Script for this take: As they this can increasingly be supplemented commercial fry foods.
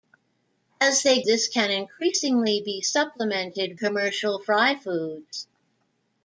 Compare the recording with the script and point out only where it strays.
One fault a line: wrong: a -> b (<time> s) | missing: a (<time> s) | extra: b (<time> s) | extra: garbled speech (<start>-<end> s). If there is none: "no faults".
no faults